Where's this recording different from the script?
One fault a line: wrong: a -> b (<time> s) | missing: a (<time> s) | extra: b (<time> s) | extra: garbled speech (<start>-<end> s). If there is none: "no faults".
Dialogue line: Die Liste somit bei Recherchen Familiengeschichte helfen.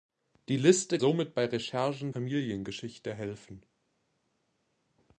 no faults